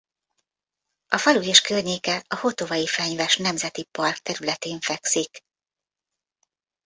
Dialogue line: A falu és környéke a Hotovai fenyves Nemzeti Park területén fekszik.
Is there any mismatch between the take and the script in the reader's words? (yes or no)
no